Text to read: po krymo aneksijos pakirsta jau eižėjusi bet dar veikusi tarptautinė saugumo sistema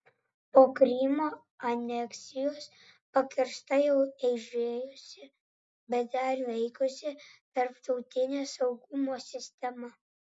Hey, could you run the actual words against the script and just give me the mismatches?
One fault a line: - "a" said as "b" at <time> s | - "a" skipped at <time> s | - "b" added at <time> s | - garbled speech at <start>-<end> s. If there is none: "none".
none